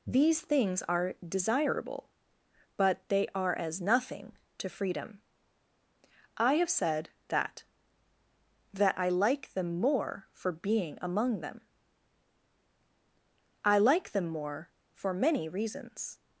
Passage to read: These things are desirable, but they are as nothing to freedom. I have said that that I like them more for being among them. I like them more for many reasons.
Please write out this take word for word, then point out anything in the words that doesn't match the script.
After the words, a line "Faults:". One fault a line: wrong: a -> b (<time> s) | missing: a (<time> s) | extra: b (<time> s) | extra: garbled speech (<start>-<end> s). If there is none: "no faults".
These things are desirable, but they are as nothing to freedom. I have said that that I like them more for being among them. I like them more for many reasons.
Faults:
no faults